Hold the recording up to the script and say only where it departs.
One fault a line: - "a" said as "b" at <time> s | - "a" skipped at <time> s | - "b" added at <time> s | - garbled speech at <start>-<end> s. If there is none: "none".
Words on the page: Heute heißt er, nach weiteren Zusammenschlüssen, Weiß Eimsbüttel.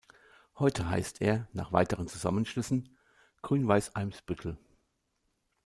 - "Grün" added at 3.4 s